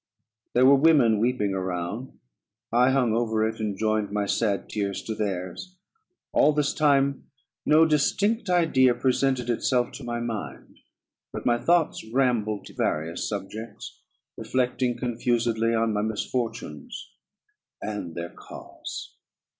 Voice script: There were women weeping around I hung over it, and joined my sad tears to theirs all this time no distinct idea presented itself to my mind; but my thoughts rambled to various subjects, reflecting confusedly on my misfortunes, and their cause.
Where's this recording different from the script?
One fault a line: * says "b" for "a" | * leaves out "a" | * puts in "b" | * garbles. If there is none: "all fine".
all fine